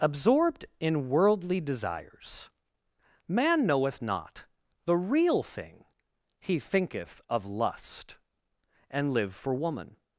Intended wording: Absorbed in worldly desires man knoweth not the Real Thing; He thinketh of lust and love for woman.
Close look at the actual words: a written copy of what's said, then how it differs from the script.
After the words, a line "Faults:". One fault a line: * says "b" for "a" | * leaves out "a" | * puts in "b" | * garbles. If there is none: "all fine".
Absorbed in worldly desires man knoweth not the Real Thing; He thinketh of lust and live for woman.
Faults:
* says "live" for "love"